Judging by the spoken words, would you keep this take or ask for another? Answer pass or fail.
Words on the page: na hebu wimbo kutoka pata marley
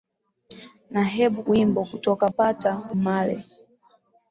pass